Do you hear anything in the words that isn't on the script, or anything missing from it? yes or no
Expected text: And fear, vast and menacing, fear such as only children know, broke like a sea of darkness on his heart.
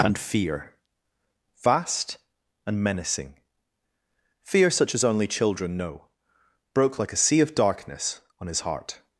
no